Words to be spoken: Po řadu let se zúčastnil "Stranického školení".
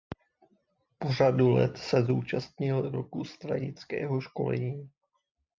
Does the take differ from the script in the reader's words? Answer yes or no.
yes